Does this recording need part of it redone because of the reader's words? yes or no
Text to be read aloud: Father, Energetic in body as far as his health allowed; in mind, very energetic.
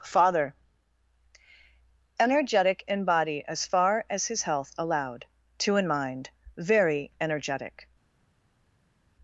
yes